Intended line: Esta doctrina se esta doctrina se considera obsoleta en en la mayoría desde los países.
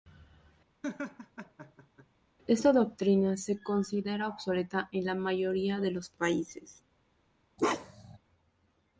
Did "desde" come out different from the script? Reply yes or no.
yes